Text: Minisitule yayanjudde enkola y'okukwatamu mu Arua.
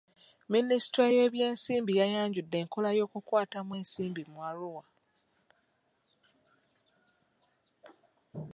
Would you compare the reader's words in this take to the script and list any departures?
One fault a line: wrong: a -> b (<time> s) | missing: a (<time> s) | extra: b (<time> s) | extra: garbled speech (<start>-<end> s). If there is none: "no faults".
extra: y'ebyensimbi (1.1 s)
extra: ensimbi (3.8 s)